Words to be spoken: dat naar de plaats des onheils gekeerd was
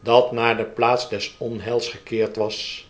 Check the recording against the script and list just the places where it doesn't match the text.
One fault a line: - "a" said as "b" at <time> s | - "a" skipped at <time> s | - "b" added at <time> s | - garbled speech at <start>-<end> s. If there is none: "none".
none